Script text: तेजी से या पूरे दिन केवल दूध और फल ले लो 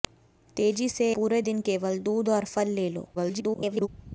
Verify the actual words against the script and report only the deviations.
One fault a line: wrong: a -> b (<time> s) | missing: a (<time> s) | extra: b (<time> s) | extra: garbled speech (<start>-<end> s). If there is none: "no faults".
missing: या (1.1 s)
extra: garbled speech (3.1-3.9 s)